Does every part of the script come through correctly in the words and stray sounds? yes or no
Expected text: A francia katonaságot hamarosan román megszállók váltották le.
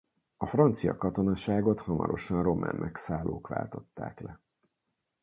yes